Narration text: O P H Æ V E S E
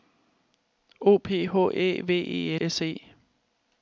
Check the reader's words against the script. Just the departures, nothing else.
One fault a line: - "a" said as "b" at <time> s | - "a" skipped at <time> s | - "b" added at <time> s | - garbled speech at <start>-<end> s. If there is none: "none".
none